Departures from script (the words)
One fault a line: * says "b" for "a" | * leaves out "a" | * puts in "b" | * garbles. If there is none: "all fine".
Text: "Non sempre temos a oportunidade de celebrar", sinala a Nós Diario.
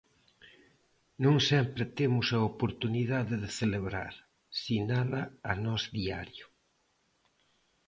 all fine